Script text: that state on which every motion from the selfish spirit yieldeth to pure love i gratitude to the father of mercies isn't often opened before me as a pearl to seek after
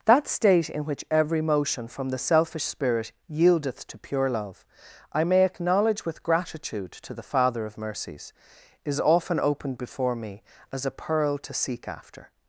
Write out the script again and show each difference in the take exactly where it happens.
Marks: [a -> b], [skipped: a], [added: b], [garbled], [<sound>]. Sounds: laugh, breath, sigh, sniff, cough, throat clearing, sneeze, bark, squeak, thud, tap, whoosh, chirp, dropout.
that state [on -> in] which every motion from the selfish spirit yieldeth to pure love i [added: may acknowledge with] gratitude to the father of mercies [isn't -> is] often opened before me as a pearl to seek after